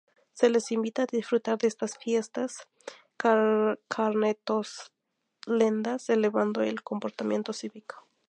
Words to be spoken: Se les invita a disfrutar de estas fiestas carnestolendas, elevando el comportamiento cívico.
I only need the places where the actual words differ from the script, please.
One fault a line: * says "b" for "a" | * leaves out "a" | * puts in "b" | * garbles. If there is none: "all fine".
all fine